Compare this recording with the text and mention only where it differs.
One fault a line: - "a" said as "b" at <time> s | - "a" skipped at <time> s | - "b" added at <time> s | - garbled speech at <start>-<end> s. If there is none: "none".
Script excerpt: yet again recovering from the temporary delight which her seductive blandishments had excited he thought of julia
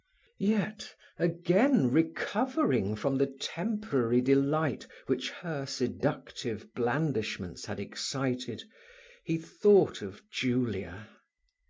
none